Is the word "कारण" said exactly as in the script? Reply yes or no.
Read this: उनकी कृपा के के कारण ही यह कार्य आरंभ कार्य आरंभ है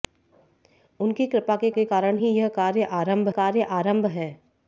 yes